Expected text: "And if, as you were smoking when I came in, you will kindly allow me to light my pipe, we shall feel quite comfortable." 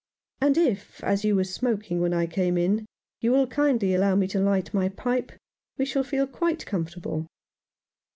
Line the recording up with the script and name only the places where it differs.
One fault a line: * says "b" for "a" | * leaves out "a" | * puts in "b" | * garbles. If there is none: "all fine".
all fine